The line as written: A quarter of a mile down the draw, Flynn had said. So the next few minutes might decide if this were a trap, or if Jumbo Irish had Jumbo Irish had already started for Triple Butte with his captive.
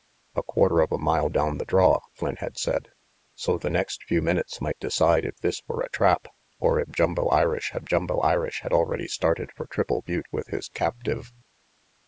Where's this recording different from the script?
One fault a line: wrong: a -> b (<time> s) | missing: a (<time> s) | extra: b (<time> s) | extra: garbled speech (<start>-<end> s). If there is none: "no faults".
no faults